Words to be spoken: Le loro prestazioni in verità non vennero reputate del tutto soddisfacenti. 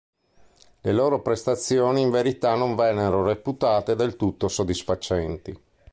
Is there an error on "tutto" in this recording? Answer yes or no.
no